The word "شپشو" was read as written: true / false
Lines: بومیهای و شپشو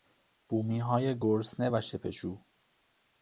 true